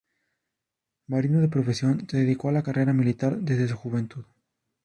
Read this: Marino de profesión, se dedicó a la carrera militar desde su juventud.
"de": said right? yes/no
yes